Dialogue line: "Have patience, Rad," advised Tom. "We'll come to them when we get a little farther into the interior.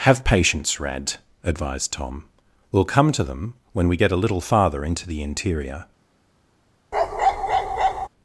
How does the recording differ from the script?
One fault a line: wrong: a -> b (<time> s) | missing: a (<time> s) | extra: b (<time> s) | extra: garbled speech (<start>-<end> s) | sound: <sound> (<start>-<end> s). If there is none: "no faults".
sound: bark (6.9-8.1 s)